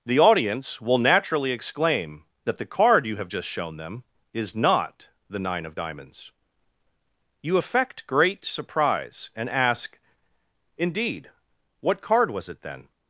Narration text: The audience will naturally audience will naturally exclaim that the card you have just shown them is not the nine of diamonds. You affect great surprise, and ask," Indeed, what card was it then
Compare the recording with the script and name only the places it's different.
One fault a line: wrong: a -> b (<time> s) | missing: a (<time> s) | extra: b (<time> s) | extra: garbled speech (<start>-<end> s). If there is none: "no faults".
missing: audience will naturally (1.5 s)